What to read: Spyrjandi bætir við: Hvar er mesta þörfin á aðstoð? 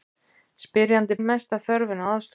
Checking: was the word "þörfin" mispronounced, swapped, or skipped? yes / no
no